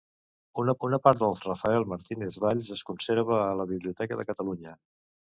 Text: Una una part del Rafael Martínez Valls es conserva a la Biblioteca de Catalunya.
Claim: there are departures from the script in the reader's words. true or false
false